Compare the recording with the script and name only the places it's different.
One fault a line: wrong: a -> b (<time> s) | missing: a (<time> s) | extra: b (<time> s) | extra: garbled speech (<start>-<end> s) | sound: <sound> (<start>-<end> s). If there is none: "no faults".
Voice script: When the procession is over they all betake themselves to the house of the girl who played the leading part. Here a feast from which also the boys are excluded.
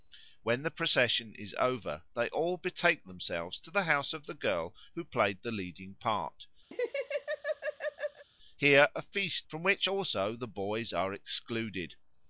sound: laugh (6.7-8.3 s)